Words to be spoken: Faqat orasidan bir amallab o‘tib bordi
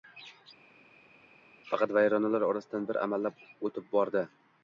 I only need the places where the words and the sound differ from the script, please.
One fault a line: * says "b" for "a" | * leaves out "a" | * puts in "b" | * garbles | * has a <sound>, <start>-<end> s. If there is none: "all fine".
* puts in "vayronalar"